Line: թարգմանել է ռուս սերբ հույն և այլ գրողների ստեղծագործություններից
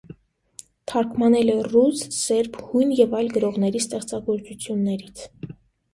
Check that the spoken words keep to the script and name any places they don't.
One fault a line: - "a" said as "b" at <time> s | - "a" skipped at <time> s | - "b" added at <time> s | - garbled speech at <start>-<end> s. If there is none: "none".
none